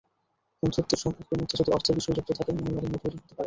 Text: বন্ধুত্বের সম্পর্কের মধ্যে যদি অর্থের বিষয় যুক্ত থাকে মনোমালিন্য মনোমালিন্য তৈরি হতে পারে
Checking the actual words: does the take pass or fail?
fail